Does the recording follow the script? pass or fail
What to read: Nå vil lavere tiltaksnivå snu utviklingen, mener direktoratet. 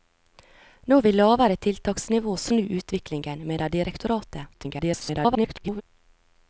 fail